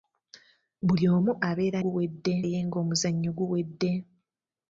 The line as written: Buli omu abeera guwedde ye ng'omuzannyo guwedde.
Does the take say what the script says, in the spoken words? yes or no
yes